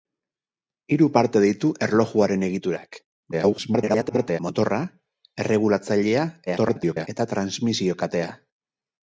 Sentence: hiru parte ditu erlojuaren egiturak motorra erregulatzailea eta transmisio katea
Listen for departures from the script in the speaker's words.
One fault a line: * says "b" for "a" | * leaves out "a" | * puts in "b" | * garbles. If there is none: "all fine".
* garbles
* garbles